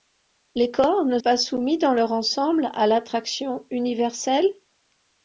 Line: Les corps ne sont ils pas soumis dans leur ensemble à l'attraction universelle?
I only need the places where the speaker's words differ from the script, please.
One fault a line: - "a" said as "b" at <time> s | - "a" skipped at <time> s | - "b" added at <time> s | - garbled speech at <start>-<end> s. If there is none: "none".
- "sont ils" skipped at 1.2 s